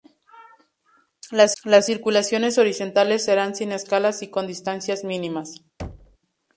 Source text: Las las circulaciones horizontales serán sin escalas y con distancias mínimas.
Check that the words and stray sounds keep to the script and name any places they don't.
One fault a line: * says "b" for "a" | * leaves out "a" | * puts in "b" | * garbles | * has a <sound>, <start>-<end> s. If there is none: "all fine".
* has a thud, 5.8-6.2 s